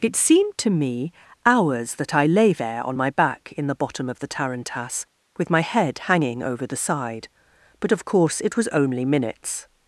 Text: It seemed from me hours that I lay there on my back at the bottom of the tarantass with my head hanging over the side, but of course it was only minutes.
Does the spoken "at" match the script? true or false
false